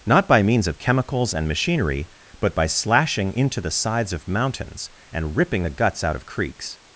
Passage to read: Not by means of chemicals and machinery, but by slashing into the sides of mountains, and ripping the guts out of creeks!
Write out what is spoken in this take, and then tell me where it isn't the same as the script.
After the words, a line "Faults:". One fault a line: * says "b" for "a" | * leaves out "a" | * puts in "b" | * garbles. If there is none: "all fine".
Not by means of chemicals and machinery, but by slashing into the sides of mountains, and ripping the guts out of creeks!
Faults:
all fine